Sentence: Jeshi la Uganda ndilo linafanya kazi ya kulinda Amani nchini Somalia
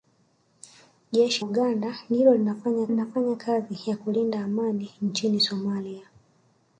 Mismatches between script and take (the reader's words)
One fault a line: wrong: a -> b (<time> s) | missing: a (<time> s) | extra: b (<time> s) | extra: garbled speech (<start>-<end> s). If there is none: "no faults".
missing: la (1.4 s)
extra: linafanya (2.9 s)